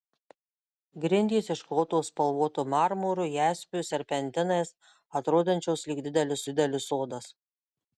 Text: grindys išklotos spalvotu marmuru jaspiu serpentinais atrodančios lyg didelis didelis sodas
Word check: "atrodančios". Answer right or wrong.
right